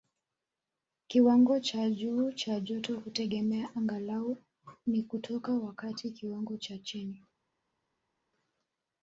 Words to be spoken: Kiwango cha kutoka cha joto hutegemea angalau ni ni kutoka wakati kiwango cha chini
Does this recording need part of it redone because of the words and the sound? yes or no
yes